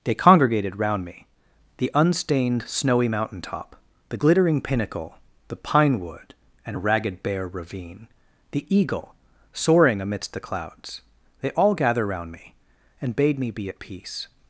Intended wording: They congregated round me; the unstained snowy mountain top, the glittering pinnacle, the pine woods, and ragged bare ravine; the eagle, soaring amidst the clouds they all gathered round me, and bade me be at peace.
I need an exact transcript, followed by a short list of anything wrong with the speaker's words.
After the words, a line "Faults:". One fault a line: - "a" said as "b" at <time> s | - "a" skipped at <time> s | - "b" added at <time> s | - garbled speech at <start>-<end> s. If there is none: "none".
They congregated round me; the unstained snowy mountain top, the glittering pinnacle, the pine wood, and ragged bare ravine; the eagle, soaring amidst the clouds they all gather round me, and bade me be at peace.
Faults:
- "woods" said as "wood" at 6.0 s
- "gathered" said as "gather" at 11.7 s